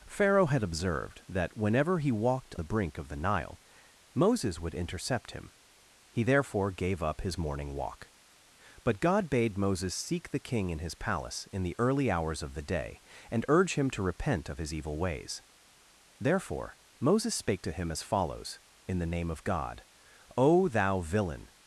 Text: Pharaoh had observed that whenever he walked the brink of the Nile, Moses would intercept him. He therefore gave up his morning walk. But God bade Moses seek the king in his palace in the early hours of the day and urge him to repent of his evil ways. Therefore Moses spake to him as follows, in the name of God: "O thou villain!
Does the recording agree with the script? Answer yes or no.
yes